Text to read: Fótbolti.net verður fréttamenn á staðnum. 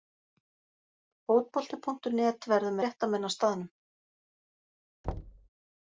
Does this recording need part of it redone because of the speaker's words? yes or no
no